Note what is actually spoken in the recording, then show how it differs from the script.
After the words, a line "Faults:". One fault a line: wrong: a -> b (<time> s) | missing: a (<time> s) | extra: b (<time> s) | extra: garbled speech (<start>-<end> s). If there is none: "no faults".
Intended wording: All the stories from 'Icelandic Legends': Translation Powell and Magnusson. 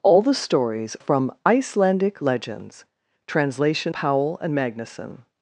All the stories from 'Icelandic Legends': Translation Powell and Magnusson.
Faults:
no faults